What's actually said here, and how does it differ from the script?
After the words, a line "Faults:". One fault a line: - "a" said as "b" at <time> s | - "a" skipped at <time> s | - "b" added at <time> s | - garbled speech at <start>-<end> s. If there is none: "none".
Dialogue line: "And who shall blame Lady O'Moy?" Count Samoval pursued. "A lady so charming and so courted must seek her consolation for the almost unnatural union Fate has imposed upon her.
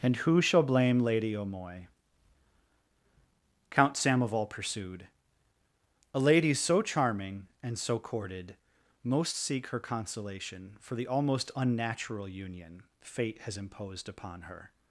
"And who shall blame Lady O'Moy?" Count Samoval pursued. "A lady so charming and so courted most seek her consolation for the almost unnatural union Fate has imposed upon her.
Faults:
- "must" said as "most" at 9.0 s